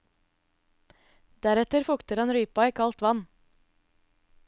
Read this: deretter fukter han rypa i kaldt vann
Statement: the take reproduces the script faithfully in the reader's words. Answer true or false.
true